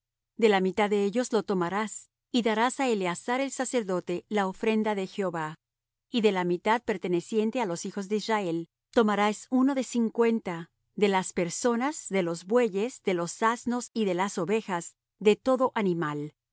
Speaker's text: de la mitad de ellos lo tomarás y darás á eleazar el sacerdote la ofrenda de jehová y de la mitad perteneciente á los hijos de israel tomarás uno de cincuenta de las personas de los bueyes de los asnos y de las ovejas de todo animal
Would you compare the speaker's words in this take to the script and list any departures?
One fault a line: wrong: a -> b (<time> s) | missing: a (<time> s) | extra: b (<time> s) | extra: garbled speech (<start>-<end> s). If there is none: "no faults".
no faults